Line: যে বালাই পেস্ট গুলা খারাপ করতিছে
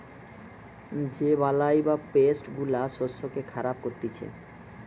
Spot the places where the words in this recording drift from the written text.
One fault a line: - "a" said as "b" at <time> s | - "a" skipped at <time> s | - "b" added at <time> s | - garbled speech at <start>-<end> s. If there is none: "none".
- "বা" added at 1.8 s
- "শস্যকে" added at 2.9 s